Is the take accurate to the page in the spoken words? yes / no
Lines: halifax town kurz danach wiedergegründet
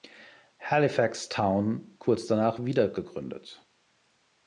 yes